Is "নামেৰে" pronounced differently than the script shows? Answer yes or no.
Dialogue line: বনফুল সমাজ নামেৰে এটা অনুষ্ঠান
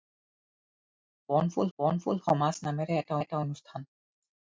no